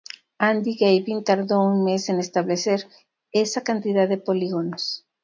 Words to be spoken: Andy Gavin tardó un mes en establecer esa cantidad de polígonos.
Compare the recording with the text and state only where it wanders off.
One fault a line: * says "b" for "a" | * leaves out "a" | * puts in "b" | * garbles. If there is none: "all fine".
all fine